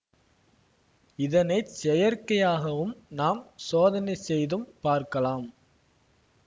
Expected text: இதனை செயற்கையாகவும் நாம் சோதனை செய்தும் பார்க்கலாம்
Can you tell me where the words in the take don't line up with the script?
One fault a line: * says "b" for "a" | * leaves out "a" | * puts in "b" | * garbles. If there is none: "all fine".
all fine